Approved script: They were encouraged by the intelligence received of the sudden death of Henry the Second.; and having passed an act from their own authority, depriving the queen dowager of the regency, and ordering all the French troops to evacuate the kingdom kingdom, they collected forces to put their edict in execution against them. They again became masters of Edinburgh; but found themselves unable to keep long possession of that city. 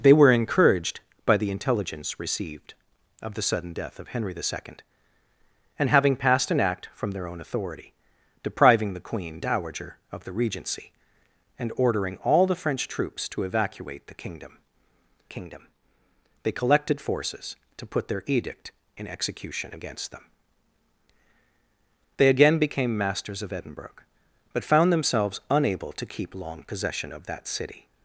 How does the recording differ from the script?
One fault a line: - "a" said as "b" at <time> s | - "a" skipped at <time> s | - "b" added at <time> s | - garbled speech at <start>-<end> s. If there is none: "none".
none